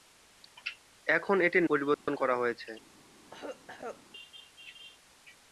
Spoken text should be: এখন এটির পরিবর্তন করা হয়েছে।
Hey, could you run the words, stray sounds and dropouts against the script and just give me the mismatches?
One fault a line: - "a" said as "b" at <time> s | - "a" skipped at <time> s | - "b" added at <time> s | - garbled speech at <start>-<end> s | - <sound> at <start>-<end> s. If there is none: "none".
- dropout at 1.9-2.1 s
- cough at 3.2-4.0 s